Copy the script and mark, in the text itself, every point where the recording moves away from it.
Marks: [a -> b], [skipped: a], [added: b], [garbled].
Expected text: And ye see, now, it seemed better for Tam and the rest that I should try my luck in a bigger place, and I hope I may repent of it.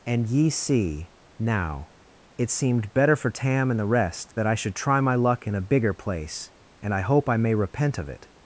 And ye see, now, it seemed better for Tam and the rest that I should try my luck in a bigger place, and I hope I may repent of it.